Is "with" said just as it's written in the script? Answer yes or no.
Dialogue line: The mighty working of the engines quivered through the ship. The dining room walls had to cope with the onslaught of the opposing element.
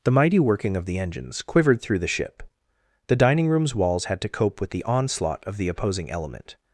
yes